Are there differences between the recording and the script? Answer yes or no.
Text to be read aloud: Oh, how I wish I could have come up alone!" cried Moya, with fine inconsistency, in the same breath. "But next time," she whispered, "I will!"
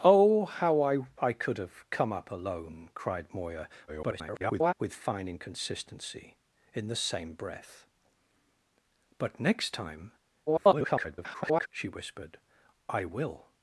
yes